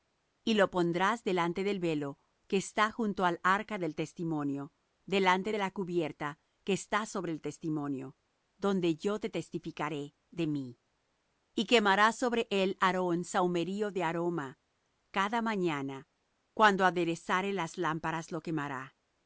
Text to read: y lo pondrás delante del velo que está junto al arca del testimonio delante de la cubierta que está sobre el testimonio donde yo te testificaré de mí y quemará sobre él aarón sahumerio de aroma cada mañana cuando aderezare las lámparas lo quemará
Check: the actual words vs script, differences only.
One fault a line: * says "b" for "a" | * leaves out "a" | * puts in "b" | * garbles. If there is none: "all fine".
all fine